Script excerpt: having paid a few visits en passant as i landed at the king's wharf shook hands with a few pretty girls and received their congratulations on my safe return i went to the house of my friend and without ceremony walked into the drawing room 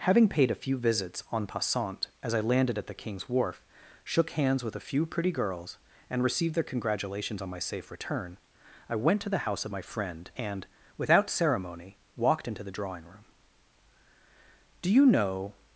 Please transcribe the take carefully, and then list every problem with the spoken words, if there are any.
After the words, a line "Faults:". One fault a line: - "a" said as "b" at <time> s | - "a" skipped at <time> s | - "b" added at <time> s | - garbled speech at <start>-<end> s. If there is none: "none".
having paid a few visits en passant as i landed at the king's wharf shook hands with a few pretty girls and received their congratulations on my safe return i went to the house of my friend and without ceremony walked into the drawing room do you know
Faults:
- "do you know" added at 14.8 s